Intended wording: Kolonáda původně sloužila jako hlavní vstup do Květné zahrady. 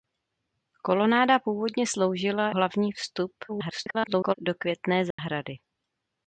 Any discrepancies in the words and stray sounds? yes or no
yes